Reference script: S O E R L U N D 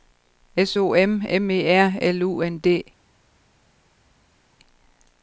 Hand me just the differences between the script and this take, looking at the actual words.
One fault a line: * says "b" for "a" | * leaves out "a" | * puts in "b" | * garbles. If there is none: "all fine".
* puts in "M M"